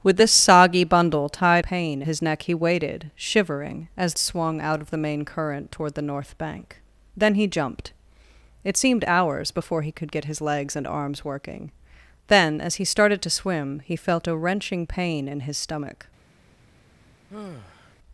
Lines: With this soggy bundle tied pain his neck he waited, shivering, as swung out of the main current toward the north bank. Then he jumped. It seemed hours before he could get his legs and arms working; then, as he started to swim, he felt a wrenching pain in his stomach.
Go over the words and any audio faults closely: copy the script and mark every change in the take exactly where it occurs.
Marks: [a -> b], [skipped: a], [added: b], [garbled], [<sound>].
With this soggy bundle tied pain his neck he waited, shivering, as swung out of the main current toward the north bank. Then he jumped. It seemed hours before he could get his legs and arms working; then, as he started to swim, he felt a wrenching pain in his stomach. [sigh]